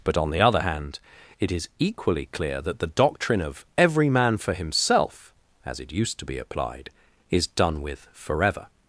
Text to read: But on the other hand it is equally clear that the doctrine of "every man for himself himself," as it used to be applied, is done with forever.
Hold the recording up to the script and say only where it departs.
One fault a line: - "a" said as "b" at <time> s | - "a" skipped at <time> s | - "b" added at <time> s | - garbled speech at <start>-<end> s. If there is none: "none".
- "himself" skipped at 5.3 s